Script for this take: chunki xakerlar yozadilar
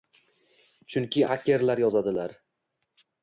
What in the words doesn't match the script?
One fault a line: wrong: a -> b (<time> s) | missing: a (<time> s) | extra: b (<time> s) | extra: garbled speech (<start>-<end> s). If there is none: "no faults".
no faults